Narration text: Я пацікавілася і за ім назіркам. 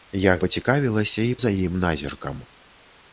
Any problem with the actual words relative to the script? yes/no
no